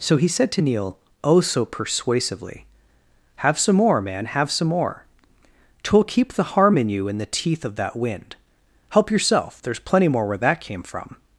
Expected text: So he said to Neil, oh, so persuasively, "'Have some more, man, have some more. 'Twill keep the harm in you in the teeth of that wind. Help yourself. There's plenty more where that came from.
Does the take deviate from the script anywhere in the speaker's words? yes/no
no